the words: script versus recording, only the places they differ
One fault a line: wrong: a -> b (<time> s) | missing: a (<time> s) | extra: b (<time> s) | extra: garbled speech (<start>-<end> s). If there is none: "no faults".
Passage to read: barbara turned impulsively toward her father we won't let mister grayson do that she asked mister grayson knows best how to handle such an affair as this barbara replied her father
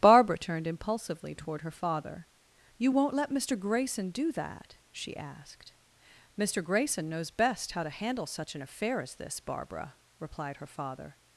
wrong: we -> you (2.8 s)